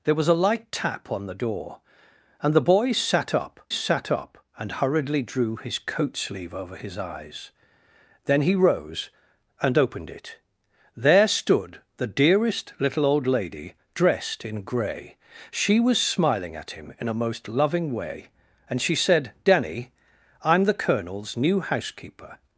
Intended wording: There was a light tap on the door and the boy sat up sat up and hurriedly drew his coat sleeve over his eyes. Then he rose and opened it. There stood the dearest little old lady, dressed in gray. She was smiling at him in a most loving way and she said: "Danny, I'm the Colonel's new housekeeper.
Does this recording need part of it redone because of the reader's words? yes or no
no